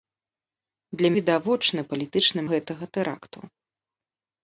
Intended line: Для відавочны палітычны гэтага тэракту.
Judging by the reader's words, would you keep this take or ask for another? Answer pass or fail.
pass